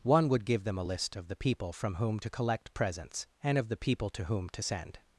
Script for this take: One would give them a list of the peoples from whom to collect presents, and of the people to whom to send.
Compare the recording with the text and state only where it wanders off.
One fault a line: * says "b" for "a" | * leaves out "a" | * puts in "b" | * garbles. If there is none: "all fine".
* says "people" for "peoples"